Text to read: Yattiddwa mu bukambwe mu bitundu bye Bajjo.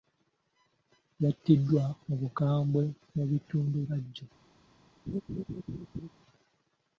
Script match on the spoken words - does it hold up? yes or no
no